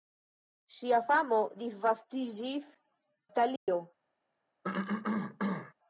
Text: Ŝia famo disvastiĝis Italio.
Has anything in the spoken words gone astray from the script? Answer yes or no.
no